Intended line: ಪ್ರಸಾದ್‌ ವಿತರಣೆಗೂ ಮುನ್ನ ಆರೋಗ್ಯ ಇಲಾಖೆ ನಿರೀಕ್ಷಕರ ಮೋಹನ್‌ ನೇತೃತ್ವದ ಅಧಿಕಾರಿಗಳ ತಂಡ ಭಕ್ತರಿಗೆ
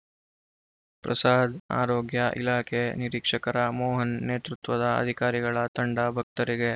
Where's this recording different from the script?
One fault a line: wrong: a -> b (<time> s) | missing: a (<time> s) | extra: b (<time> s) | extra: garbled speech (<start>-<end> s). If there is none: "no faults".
missing: ವಿತರಣೆಗೂ ಮುನ್ನ (1.5 s)